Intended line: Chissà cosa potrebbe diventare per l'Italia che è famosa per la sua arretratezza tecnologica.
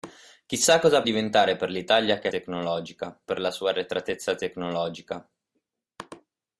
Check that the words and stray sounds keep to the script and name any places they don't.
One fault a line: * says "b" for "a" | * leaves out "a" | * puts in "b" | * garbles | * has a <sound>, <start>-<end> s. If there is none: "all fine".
* leaves out "potrebbe"
* says "tecnologica" for "famosa"